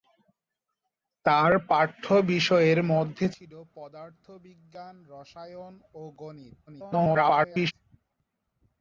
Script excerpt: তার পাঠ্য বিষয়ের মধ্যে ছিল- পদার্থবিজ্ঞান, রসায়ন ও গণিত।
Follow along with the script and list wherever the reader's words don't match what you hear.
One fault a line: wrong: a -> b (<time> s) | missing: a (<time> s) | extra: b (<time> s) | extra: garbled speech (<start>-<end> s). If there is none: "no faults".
extra: garbled speech (6.7-7.7 s)